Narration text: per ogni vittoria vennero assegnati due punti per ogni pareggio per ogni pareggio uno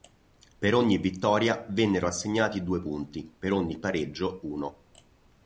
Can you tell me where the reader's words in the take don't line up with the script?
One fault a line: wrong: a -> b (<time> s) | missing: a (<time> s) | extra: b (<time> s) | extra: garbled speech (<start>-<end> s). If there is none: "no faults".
missing: per ogni pareggio (4.4 s)